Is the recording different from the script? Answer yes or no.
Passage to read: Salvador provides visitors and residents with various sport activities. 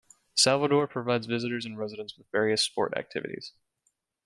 no